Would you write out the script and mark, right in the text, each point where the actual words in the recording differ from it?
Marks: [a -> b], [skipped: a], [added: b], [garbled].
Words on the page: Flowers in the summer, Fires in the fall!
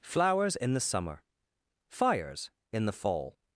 Flowers in the summer, Fires in the fall!